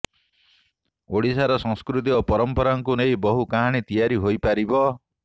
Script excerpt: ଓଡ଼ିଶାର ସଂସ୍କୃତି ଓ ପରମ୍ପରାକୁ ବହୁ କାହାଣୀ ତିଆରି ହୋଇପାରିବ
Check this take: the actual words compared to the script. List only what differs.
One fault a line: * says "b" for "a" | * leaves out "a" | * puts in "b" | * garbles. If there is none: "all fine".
* puts in "ନେଇ"